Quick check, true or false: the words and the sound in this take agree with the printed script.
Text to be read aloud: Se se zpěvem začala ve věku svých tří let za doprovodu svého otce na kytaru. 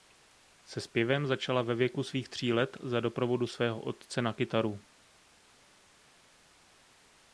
false